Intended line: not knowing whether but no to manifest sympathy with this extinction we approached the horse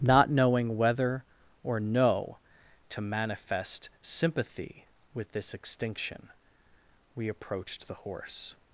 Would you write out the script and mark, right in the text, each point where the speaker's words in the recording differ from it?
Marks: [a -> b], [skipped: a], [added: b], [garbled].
not knowing whether [but -> or] no to manifest sympathy with this extinction we approached the horse